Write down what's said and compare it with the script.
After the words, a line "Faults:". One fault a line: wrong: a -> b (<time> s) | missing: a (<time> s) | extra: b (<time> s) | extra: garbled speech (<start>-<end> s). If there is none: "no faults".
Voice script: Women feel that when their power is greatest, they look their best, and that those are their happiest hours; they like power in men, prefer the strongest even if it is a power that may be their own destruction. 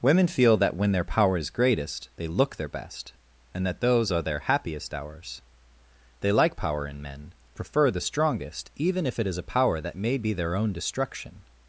Women feel that when their power is greatest, they look their best, and that those are their happiest hours; they like power in men, prefer the strongest even if it is a power that may be their own destruction.
Faults:
no faults